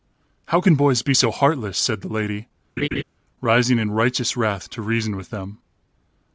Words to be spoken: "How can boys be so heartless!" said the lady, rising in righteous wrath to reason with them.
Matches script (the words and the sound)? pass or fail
fail